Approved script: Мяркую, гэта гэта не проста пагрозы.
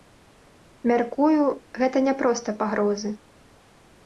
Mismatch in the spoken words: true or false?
true